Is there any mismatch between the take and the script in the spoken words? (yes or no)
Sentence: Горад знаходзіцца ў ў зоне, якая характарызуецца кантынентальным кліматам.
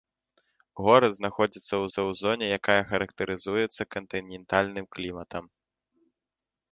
no